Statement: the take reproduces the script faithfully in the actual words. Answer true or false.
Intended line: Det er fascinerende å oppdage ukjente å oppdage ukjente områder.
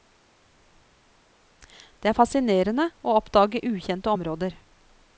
false